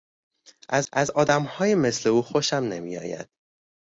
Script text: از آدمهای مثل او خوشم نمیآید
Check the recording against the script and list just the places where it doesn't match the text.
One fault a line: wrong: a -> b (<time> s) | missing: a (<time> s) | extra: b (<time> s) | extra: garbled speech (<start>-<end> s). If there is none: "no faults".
extra: از (0.9 s)